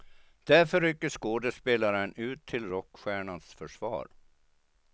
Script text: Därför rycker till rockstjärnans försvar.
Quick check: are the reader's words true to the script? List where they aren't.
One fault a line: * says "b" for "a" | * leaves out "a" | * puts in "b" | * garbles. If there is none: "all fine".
* puts in "skådespelaren ut"